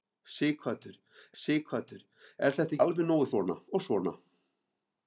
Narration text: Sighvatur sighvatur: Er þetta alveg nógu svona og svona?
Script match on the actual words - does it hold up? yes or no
yes